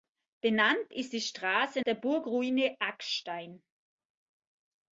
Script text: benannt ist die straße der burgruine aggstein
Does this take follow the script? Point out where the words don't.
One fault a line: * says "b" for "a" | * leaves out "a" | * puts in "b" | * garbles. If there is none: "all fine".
all fine